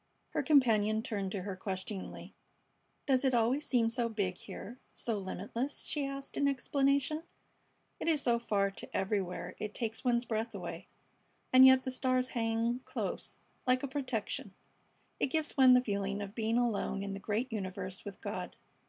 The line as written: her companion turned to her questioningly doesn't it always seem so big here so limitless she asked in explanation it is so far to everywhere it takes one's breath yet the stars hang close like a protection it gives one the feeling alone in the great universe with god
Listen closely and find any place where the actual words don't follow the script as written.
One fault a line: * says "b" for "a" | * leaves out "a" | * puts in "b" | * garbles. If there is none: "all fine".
* says "does" for "doesn't"
* puts in "away and"
* puts in "of being"